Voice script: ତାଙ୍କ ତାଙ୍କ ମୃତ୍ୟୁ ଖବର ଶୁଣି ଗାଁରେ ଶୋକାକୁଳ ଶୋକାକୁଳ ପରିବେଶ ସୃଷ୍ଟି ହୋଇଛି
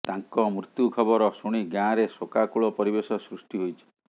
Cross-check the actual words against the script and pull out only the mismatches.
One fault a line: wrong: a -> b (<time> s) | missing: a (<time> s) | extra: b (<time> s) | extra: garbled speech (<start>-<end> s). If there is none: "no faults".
missing: ତାଙ୍କ (0.5 s)
missing: ଶୋକାକୁଳ (2.7 s)